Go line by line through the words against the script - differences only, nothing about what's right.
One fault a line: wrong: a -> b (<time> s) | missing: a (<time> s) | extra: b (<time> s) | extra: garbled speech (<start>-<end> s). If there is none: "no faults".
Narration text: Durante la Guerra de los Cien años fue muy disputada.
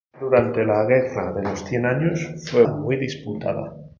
no faults